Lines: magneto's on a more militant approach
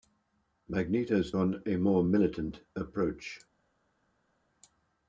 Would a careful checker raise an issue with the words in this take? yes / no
no